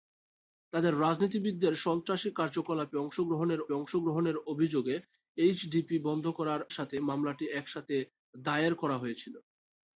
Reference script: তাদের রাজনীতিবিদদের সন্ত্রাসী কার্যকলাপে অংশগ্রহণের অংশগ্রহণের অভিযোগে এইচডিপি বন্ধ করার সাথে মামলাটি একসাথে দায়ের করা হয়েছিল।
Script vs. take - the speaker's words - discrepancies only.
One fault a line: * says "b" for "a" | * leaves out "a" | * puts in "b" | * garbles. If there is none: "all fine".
all fine